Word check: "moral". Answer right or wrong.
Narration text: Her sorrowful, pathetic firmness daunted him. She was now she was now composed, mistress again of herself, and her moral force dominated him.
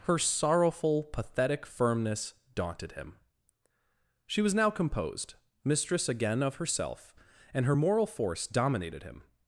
right